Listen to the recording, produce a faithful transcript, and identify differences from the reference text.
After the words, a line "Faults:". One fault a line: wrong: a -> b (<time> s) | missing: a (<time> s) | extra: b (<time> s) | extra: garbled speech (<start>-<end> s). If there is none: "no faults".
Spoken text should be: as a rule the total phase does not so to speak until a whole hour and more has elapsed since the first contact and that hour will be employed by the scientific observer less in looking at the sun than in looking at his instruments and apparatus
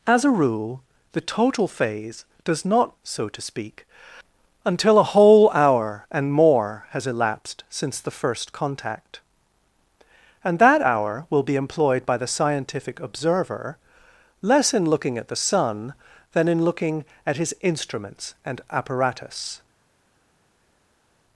as a rule the total phase does not so to speak until a whole hour and more has elapsed since the first contact and that hour will be employed by the scientific observer less in looking at the sun than in looking at his instruments and apparatus
Faults:
no faults